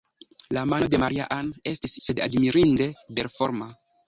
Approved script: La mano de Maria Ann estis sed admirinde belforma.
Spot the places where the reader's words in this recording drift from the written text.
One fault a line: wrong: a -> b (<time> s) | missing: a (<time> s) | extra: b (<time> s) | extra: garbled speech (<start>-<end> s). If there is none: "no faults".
no faults